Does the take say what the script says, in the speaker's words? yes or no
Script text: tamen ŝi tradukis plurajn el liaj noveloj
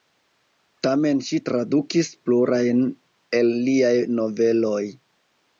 yes